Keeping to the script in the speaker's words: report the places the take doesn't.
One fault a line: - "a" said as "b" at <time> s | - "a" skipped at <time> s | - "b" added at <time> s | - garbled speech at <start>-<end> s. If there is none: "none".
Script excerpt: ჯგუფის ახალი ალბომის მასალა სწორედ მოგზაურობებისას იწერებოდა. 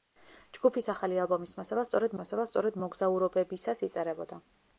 - "მასალა სწორედ" added at 2.2 s